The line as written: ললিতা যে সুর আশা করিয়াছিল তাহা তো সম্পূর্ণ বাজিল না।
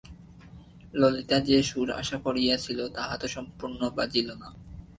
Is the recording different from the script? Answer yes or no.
no